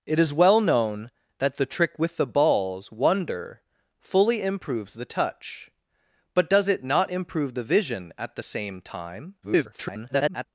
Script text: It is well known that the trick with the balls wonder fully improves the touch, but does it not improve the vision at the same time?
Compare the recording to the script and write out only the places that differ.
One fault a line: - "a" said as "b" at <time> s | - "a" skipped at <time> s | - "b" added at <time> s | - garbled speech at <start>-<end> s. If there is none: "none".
- garbled speech at 9.4-10.5 s